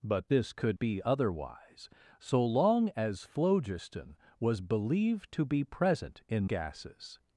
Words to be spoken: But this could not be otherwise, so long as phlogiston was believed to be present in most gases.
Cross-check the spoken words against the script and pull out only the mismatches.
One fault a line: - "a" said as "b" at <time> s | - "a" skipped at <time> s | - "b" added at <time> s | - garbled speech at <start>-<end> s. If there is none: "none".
- "not" skipped at 0.8 s
- "most" skipped at 6.5 s